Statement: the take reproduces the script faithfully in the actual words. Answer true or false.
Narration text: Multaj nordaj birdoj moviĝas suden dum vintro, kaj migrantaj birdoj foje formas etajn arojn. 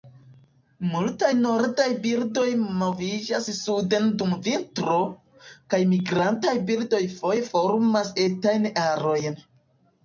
true